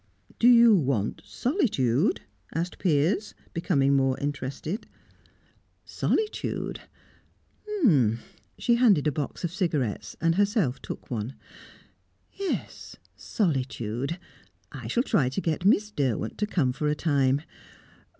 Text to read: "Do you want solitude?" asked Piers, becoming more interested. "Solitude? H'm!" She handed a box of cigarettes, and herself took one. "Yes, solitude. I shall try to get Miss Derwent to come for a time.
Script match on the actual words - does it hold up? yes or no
yes